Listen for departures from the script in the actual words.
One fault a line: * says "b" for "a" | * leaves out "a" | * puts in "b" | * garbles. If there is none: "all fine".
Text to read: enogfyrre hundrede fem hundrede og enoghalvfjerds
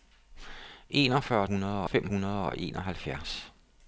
all fine